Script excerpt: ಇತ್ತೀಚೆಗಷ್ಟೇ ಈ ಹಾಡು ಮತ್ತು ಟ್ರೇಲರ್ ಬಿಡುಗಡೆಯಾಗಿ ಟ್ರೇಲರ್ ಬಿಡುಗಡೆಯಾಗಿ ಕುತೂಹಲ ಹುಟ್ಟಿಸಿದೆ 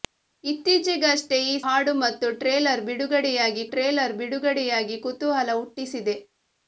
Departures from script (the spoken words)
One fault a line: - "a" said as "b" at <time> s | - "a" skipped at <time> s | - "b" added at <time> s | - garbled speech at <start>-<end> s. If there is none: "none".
none